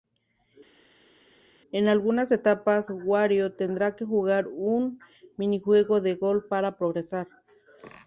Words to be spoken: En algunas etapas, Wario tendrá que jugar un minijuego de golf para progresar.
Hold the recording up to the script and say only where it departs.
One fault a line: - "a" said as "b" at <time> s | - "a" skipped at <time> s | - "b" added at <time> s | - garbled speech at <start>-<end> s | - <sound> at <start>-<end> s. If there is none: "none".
none